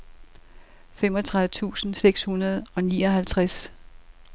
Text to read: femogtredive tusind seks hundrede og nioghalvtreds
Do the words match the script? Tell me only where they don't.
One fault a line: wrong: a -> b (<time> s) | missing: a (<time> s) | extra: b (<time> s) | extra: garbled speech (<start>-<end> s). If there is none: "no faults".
no faults